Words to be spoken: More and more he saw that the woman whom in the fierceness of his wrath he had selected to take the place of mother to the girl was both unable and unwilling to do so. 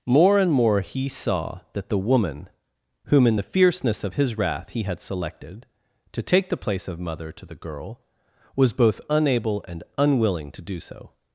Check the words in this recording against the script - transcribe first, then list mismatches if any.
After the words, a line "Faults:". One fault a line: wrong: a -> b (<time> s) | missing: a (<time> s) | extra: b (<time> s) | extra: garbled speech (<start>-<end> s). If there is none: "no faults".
More and more he saw that the woman whom in the fierceness of his wrath he had selected to take the place of mother to the girl was both unable and unwilling to do so.
Faults:
no faults